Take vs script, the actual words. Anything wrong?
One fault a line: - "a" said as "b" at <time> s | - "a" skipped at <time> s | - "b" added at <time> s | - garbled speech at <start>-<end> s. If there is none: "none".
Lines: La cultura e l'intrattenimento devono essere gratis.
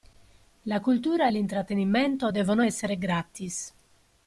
none